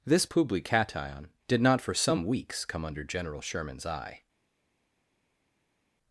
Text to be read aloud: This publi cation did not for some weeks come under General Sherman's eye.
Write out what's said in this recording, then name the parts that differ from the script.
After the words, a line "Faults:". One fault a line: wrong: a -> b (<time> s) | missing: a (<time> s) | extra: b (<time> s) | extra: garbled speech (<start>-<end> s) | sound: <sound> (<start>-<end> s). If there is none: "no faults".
This publi cation did not for some weeks come under General Sherman's eye.
Faults:
no faults